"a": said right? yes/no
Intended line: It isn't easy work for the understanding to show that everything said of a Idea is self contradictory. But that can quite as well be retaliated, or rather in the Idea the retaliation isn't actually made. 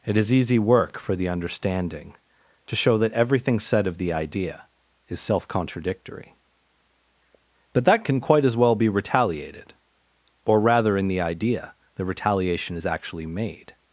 no